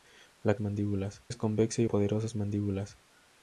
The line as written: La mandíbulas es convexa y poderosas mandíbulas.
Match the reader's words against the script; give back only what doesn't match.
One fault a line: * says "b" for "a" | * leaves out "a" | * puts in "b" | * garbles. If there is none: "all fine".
all fine